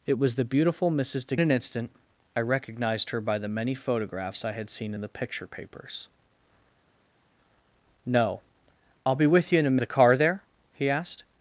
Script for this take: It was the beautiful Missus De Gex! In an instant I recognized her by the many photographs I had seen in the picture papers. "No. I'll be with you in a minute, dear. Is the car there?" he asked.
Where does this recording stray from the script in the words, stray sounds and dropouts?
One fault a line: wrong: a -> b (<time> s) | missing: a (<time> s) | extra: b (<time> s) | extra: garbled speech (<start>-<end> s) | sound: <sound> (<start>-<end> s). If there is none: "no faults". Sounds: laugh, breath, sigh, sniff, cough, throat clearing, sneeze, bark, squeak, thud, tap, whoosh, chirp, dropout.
missing: Gex In (1.4 s)
missing: minute dear Is (9.8 s)